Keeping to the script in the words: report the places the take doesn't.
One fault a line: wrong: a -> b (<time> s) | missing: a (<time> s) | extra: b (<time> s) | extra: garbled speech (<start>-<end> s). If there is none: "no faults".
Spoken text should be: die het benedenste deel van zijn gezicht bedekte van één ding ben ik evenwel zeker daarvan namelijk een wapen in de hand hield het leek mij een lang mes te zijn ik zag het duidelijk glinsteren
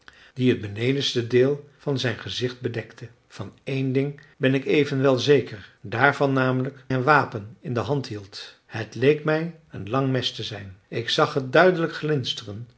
no faults